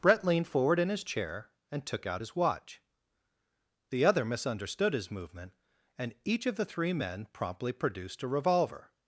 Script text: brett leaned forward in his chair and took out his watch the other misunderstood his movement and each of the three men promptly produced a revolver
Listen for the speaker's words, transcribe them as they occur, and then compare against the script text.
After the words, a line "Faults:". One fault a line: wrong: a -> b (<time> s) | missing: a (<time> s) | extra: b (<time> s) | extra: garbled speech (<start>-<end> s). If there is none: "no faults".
brett leaned forward in his chair and took out his watch the other misunderstood his movement and each of the three men promptly produced a revolver
Faults:
no faults